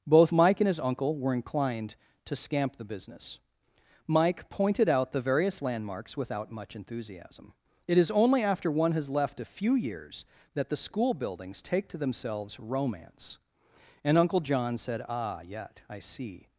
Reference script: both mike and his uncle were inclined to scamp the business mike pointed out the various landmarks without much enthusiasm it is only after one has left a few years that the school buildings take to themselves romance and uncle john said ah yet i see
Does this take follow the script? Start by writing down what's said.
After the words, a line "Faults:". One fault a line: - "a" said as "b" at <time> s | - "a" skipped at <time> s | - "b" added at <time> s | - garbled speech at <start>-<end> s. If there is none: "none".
both mike and his uncle were inclined to scamp the business mike pointed out the various landmarks without much enthusiasm it is only after one has left a few years that the school buildings take to themselves romance and uncle john said ah yet i see
Faults:
none